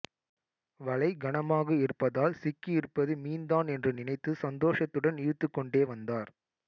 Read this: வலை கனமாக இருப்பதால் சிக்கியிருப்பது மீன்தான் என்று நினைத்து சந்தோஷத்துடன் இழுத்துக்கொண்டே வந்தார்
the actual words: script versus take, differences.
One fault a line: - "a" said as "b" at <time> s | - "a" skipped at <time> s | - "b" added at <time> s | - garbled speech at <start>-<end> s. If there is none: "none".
none